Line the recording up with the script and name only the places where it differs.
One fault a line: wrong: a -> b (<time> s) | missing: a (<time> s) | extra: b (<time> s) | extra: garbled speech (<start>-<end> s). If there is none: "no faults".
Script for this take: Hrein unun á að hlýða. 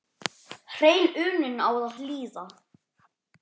no faults